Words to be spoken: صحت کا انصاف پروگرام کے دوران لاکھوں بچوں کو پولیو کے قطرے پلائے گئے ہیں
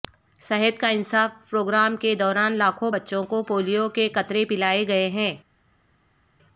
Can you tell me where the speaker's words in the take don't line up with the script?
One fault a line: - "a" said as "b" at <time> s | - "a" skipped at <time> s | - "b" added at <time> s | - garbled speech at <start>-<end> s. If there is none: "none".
none